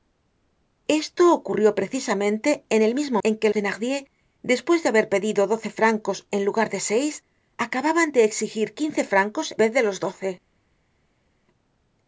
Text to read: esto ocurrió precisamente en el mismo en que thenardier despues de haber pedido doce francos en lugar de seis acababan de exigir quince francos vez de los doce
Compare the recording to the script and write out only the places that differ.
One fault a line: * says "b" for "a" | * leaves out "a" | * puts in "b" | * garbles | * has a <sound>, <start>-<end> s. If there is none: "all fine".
all fine